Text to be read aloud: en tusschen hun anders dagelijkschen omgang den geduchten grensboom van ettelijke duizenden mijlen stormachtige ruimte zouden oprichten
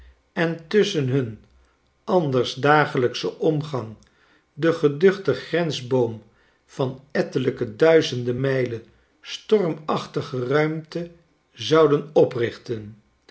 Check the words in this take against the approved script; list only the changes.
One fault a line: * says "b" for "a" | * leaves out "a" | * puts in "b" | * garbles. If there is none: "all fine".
all fine